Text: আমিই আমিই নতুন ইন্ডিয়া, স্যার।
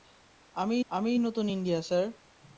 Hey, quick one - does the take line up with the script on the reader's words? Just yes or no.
yes